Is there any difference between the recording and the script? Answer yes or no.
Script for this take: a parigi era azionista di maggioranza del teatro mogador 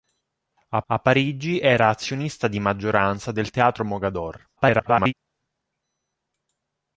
yes